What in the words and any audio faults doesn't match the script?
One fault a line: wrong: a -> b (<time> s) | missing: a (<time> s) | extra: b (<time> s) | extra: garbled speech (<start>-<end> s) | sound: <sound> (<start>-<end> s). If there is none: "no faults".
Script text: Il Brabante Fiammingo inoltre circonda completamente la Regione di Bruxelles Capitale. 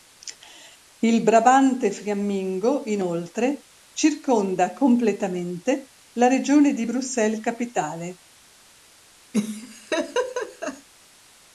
sound: laugh (9.3-10.9 s)